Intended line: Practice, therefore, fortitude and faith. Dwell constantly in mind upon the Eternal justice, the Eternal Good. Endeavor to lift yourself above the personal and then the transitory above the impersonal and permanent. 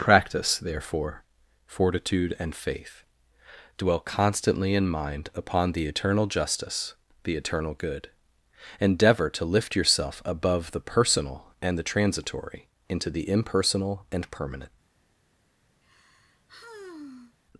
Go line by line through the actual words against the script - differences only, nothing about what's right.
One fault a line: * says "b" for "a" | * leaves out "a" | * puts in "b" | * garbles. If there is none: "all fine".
* leaves out "then"
* says "into" for "above"